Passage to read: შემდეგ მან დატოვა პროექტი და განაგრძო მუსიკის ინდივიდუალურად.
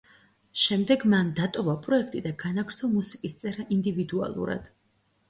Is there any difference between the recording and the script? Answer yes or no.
yes